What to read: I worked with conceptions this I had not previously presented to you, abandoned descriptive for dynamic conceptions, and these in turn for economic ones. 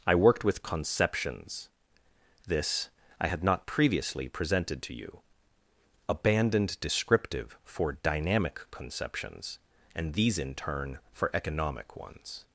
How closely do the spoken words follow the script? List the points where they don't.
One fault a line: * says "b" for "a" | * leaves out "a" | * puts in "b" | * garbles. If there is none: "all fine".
all fine